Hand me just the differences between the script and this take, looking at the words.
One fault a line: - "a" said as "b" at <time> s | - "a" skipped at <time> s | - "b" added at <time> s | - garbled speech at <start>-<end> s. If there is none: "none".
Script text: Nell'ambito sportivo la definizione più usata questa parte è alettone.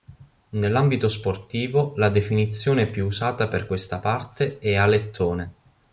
- "per" added at 3.5 s